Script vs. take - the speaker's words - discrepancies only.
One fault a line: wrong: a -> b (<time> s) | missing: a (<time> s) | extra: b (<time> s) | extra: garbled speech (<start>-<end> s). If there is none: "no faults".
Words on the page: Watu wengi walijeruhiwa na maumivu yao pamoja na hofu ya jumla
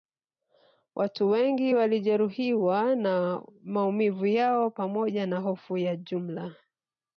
no faults